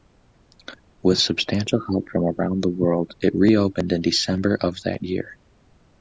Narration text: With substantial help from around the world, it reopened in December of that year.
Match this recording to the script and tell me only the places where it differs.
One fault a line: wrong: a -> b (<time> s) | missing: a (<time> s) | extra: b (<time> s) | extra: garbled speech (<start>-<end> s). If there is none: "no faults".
no faults